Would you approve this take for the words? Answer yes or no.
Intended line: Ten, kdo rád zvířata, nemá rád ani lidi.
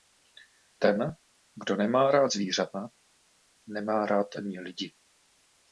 no